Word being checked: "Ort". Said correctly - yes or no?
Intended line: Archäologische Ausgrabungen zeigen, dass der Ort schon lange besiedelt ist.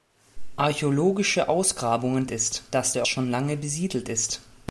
no